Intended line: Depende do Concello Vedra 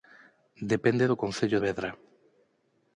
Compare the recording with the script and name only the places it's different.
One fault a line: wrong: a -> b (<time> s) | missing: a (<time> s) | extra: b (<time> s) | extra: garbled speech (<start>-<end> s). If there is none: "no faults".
no faults